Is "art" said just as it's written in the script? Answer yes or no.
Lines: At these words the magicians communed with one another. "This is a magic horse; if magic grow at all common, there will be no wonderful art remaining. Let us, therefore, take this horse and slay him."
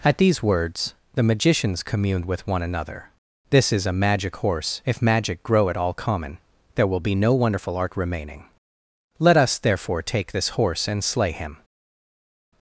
yes